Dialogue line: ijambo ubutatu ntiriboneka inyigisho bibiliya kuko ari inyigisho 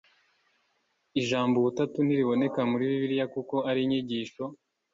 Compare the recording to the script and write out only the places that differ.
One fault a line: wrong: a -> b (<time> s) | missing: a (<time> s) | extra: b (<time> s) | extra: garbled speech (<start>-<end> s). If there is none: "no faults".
wrong: inyigisho -> muri (2.7 s)